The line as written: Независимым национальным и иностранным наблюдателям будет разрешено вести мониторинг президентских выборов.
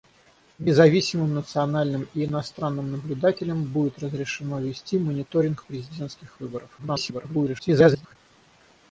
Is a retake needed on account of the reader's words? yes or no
yes